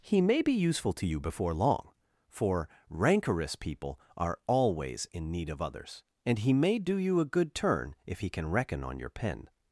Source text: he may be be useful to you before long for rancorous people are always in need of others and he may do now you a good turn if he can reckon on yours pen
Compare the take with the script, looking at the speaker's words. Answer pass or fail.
fail